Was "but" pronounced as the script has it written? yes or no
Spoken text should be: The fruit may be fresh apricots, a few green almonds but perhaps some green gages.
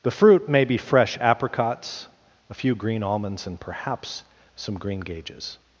no